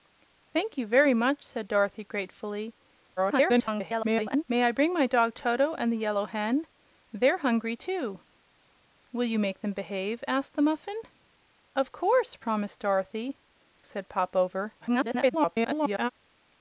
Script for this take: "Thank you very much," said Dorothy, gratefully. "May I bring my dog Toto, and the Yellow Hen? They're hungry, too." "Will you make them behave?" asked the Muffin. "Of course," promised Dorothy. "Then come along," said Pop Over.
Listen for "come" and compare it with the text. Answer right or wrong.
wrong